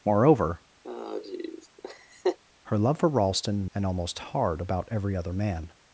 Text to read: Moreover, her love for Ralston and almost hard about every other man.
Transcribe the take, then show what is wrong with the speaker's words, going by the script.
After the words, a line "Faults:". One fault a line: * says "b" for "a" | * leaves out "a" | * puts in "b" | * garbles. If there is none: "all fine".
Moreover, her love for Ralston and almost hard about every other man.
Faults:
all fine